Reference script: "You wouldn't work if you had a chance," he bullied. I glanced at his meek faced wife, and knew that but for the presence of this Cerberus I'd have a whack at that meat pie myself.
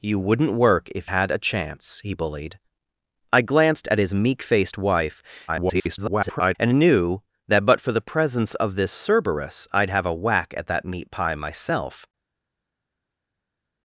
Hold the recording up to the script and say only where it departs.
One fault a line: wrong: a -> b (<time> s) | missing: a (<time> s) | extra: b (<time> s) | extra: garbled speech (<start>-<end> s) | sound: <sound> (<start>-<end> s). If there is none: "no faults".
missing: you (1.1 s)
extra: garbled speech (5.5-6.6 s)